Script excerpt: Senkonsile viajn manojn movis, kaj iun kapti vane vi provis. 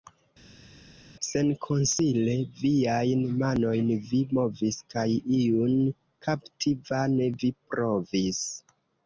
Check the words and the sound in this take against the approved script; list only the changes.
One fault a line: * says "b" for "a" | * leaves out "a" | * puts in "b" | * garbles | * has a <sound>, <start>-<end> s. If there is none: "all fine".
* puts in "vi"